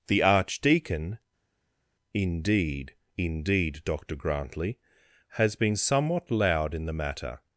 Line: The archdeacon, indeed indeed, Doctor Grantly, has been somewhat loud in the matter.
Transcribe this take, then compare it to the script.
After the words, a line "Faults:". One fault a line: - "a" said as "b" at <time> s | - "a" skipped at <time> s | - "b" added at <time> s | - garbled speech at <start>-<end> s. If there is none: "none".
The archdeacon, indeed indeed, Doctor Grantly, has been somewhat loud in the matter.
Faults:
none